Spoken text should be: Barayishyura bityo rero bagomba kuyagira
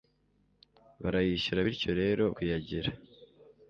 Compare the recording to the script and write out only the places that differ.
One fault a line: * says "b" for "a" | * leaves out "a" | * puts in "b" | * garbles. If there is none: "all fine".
* leaves out "bagomba"